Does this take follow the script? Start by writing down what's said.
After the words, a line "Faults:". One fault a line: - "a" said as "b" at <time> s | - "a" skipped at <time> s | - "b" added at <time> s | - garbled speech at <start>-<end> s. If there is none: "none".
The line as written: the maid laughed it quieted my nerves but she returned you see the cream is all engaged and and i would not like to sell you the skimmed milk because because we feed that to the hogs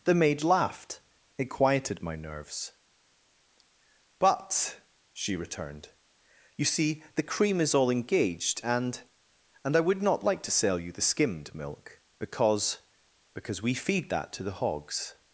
the maid laughed it quieted my nerves but she returned you see the cream is all engaged and and i would not like to sell you the skimmed milk because because we feed that to the hogs
Faults:
none